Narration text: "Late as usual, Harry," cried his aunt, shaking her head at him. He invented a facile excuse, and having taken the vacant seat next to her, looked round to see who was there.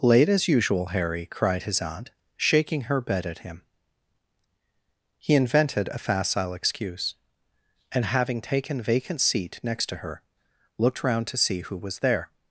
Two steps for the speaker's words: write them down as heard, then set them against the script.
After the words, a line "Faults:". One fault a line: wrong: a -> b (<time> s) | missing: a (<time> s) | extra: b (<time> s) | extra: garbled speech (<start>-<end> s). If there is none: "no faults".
"Late as usual, Harry," cried his aunt, shaking her bed at him. He invented a facile excuse, and having taken vacant seat next to her, looked round to see who was there.
Faults:
wrong: head -> bed (3.0 s)
missing: the (8.8 s)